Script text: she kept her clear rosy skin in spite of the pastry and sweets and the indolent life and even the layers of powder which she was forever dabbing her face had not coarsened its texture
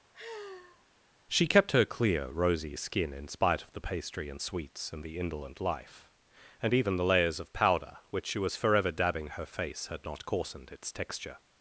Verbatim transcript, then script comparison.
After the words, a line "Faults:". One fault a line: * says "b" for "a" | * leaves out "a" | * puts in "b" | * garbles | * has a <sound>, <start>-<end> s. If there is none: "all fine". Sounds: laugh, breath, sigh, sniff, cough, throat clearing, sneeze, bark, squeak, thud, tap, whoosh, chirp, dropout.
she kept her clear rosy skin in spite of the pastry and sweets and the indolent life and even the layers of powder which she was forever dabbing her face had not coarsened its texture
Faults:
* has a sigh, 0.1-0.8 s